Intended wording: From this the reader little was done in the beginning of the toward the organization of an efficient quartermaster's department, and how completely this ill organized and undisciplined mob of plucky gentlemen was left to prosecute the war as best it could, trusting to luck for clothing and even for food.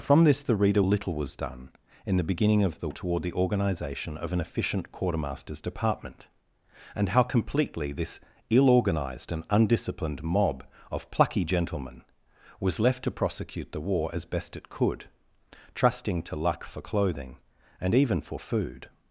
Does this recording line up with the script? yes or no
yes